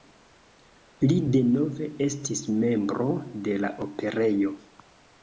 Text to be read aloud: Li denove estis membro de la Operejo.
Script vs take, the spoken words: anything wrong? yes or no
no